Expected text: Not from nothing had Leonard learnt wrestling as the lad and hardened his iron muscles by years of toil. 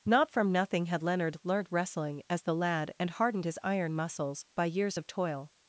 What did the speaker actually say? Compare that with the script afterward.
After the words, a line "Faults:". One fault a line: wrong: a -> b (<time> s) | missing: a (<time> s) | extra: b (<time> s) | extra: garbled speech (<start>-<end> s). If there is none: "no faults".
Not from nothing had Leonard learnt wrestling as the lad and hardened his iron muscles by years of toil.
Faults:
no faults